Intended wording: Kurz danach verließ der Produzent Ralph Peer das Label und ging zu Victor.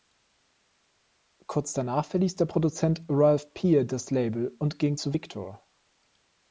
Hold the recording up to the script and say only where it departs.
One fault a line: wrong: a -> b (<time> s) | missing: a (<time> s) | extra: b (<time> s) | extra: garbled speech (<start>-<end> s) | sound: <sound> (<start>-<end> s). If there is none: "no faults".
no faults